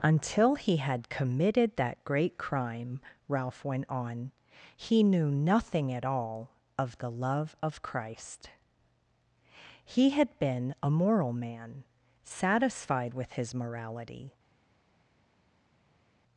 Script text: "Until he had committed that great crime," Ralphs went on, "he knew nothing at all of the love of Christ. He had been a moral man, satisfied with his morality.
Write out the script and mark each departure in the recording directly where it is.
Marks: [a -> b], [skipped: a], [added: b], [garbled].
"Until he had committed that great crime," [Ralphs -> Ralph] went on, "he knew nothing at all of the love of Christ. He had been a moral man, satisfied with his morality.